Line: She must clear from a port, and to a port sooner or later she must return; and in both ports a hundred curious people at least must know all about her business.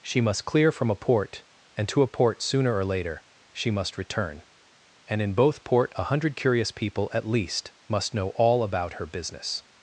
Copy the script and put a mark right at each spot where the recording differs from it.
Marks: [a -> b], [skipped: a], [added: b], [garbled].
She must clear from a port, and to a port sooner or later she must return; and in both [ports -> port] a hundred curious people at least must know all about her business.